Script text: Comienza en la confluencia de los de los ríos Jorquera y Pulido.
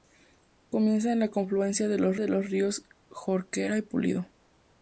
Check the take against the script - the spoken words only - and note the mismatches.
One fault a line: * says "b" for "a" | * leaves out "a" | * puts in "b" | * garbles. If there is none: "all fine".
all fine